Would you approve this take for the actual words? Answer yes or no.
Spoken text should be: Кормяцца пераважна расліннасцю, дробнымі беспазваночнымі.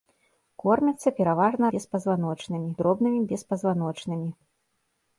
no